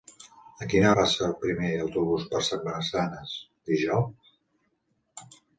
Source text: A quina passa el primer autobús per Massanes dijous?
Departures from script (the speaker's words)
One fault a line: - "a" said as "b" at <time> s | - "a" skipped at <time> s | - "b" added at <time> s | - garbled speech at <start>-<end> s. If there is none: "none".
none